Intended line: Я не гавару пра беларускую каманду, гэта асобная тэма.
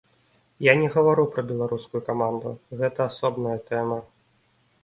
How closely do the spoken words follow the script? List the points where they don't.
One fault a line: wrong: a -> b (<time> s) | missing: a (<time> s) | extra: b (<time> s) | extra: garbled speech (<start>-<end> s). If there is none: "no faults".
no faults